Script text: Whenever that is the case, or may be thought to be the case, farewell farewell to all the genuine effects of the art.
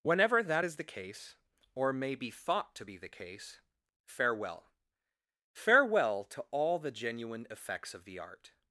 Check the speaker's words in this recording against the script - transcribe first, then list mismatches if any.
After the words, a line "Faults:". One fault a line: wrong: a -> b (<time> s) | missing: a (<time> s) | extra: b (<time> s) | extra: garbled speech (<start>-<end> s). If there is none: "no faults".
Whenever that is the case, or may be thought to be the case, farewell farewell to all the genuine effects of the art.
Faults:
no faults